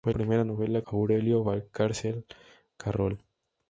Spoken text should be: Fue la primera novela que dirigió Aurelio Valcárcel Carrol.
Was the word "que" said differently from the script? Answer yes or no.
yes